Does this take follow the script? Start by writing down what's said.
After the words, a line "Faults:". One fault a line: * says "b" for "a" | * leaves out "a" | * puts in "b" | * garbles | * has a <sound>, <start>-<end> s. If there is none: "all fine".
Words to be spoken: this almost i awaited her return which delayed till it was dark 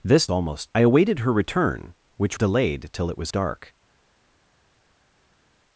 this almost i awaited her return which delayed till it was dark
Faults:
all fine